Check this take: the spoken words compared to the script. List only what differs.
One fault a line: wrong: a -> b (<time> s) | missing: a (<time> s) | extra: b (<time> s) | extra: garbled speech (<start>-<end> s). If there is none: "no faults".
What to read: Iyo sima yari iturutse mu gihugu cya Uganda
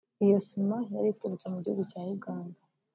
no faults